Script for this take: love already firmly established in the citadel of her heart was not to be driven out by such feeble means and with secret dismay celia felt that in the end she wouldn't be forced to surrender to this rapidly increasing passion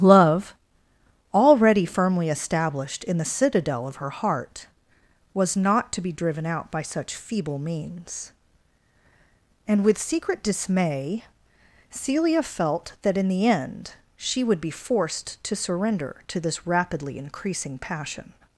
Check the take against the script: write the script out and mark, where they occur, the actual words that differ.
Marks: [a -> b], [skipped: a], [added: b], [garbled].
love already firmly established in the citadel of her heart was not to be driven out by such feeble means and with secret dismay celia felt that in the end she [wouldn't -> would] be forced to surrender to this rapidly increasing passion